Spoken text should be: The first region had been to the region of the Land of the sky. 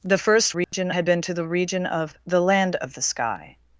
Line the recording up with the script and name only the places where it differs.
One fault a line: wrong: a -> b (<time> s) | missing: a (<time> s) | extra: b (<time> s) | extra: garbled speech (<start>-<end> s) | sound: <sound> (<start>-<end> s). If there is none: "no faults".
sound: dropout (0.6-0.7 s)